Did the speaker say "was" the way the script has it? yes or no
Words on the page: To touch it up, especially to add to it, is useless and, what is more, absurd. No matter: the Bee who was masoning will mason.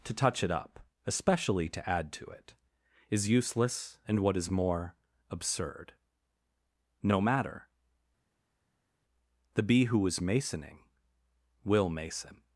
no